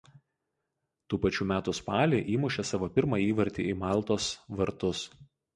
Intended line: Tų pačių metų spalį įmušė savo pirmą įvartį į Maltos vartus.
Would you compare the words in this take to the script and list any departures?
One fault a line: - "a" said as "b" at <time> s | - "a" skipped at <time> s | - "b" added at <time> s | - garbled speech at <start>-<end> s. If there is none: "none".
none